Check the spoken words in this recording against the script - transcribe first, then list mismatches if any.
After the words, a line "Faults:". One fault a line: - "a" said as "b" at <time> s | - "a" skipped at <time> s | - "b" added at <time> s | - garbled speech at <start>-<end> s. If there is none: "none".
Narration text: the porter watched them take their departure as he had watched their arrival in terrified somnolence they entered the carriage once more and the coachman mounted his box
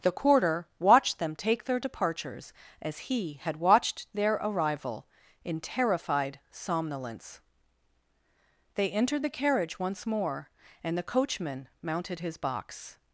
the quarter watched them take their departures as he had watched their arrival in terrified somnolence they entered the carriage once more and the coachman mounted his box
Faults:
- "porter" said as "quarter" at 0.1 s
- "departure" said as "departures" at 1.8 s